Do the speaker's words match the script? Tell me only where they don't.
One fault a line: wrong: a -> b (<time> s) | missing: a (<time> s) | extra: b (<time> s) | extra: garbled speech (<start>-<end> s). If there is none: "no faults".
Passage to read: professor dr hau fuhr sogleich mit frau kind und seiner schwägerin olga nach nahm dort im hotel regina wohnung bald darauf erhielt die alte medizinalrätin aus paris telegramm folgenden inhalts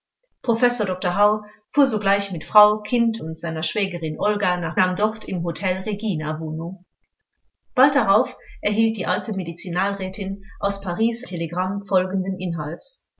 no faults